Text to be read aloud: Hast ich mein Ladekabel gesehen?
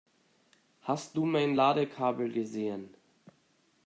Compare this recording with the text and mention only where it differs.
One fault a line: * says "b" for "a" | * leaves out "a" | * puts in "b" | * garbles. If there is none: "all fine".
* says "du" for "ich"